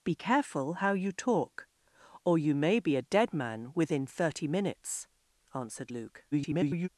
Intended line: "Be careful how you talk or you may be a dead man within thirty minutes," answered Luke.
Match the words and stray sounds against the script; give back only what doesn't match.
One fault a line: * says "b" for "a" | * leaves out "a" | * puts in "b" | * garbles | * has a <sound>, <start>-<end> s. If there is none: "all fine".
* garbles